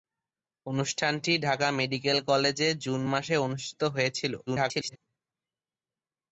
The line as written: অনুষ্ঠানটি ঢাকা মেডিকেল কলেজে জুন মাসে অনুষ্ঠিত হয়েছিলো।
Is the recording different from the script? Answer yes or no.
yes